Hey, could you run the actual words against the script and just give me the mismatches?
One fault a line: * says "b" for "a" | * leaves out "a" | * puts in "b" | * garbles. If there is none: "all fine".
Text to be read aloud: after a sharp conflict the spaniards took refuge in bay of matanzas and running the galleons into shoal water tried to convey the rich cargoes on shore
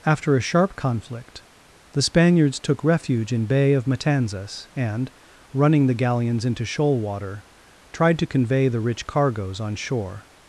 all fine